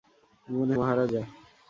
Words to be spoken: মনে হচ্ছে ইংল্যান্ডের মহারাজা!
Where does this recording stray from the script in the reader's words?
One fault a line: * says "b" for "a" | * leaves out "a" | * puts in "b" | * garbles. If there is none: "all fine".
* leaves out "হচ্ছে ইংল্যান্ডের"